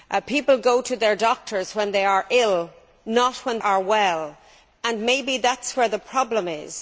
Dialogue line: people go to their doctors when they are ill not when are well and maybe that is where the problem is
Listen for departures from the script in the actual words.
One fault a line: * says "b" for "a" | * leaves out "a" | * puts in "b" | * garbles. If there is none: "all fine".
all fine